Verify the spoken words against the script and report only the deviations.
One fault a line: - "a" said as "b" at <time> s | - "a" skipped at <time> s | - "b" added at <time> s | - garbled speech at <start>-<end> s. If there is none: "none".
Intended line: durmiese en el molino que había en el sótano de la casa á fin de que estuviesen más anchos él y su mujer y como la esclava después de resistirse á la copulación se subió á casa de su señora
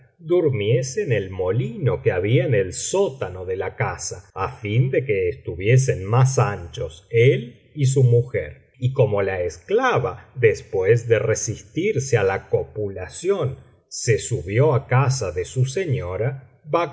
none